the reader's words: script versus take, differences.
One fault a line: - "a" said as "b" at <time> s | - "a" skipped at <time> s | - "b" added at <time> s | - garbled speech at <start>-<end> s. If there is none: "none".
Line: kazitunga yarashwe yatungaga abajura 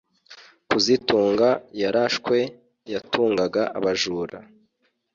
none